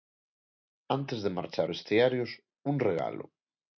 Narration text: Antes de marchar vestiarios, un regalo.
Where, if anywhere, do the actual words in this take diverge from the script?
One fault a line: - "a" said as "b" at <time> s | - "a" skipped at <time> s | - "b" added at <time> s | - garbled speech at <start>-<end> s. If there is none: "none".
none